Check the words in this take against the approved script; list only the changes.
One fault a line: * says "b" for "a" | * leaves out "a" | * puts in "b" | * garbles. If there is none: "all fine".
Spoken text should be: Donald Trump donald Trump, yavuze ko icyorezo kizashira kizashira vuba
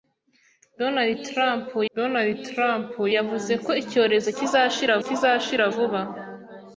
all fine